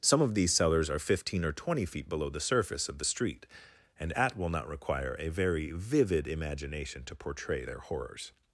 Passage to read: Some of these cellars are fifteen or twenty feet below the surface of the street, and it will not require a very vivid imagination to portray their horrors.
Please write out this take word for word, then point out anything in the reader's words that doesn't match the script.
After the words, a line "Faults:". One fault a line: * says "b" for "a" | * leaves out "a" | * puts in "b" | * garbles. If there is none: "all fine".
Some of these cellars are fifteen or twenty feet below the surface of the street, and at will not require a very vivid imagination to portray their horrors.
Faults:
* says "at" for "it"